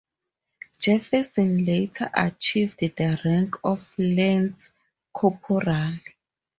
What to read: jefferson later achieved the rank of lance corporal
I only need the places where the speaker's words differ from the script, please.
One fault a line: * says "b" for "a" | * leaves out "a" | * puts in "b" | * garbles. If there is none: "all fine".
all fine